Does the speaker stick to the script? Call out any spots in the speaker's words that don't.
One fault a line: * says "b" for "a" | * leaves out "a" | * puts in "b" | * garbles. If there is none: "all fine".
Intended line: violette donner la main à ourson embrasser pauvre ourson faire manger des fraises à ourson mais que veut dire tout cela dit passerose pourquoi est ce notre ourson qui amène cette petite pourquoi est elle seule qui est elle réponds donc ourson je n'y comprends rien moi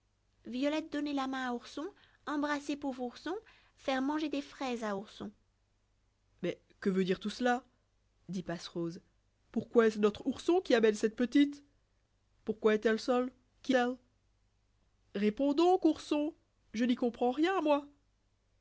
* leaves out "est"